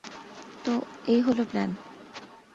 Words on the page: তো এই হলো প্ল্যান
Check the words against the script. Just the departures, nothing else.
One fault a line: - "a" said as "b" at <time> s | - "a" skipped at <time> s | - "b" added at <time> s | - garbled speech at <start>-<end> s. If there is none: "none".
none